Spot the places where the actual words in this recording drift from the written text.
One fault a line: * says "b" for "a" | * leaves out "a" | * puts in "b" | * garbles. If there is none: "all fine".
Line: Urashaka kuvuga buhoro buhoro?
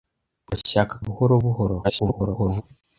* leaves out "kuvuga"
* garbles